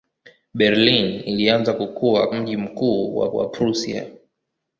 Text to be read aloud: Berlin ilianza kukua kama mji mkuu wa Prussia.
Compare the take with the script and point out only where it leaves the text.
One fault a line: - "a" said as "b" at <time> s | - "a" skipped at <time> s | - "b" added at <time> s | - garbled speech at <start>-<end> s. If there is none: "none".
- "kama" skipped at 2.3 s
- "wa" added at 3.3 s